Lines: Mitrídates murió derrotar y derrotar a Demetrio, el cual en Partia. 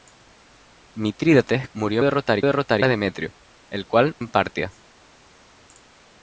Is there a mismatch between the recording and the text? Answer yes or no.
no